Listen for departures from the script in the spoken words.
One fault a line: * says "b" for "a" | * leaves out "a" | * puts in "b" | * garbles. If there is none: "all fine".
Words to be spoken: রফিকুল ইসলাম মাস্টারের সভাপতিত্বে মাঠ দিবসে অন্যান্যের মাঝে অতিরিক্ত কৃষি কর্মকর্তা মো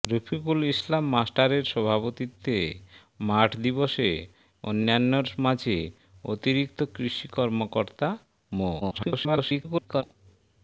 * garbles